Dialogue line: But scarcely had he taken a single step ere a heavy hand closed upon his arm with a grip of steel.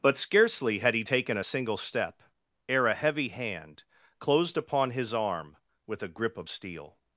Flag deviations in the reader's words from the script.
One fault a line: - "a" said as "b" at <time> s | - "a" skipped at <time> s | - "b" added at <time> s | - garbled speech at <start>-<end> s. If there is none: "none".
none